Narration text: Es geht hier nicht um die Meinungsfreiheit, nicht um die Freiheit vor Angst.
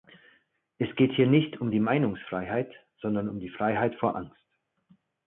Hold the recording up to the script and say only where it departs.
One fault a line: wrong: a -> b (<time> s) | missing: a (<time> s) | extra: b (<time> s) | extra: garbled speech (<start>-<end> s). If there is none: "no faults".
wrong: nicht -> sondern (3.0 s)